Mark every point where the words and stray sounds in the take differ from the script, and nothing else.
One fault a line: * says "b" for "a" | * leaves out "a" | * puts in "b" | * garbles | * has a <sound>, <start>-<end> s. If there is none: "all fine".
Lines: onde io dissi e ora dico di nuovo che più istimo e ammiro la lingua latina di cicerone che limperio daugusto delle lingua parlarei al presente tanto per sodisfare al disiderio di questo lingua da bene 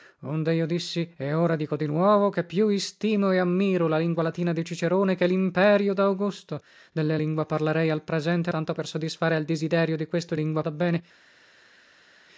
all fine